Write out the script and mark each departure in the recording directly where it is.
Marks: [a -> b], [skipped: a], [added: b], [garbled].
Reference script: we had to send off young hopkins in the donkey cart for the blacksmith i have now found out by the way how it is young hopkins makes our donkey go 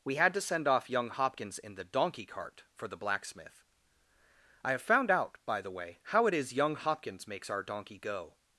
we had to send off young hopkins in the donkey cart for the blacksmith i have [skipped: now] found out by the way how it is young hopkins makes our donkey go